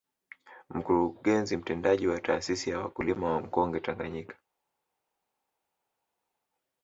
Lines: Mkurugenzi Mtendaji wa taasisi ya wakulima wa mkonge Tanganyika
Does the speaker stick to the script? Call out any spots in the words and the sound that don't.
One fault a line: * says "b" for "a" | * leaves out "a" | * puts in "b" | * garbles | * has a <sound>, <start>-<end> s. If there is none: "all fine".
all fine